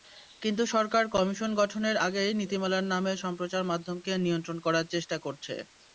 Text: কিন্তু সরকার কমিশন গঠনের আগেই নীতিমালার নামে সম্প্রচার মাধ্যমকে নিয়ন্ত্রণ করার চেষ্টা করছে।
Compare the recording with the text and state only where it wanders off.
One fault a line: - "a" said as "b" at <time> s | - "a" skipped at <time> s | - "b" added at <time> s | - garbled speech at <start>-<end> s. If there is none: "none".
none